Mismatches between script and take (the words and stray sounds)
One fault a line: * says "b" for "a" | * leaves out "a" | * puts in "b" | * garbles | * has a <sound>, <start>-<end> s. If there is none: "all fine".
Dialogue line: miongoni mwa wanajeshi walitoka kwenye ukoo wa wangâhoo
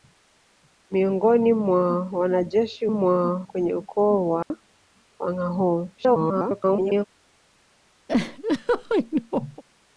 * says "mwa" for "walitoka"
* has a dropout, 4.4-4.5 s
* garbles
* has a laugh, 8.1-9.6 s